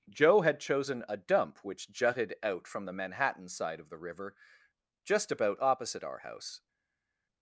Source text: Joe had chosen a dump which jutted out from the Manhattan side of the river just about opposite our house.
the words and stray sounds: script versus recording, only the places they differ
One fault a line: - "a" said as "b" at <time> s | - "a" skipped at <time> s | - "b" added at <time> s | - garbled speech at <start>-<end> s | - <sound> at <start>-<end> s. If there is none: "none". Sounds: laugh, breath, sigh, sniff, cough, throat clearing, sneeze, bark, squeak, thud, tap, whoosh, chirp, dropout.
none